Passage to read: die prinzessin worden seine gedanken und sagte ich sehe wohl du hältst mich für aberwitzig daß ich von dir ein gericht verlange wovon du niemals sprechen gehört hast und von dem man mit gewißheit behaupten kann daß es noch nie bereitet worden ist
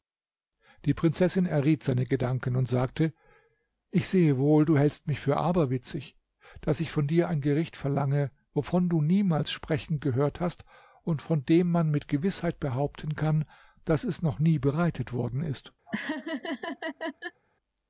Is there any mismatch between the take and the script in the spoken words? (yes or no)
yes